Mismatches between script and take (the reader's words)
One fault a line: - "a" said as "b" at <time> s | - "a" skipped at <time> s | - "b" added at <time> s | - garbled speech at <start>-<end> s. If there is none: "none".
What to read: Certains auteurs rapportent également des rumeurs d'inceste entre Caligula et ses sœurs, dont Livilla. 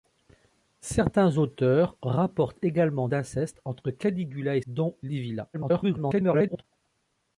- "des rumeurs" skipped at 3.1 s
- "ses sœurs" skipped at 4.6 s
- garbled speech at 5.5-6.6 s